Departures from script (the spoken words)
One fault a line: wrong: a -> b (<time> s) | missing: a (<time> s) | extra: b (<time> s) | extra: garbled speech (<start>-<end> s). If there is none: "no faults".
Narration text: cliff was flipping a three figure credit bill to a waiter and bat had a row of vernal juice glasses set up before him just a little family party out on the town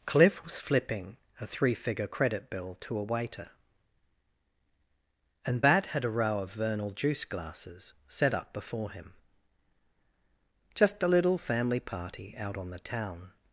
no faults